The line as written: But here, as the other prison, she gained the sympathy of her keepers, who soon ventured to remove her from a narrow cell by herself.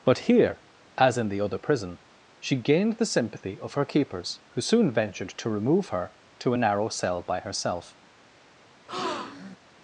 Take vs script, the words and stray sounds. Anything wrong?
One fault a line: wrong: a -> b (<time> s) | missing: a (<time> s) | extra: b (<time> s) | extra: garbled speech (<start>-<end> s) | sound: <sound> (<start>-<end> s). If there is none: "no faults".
extra: in (1.2 s)
wrong: from -> to (6.4 s)
sound: breath (8.9-9.6 s)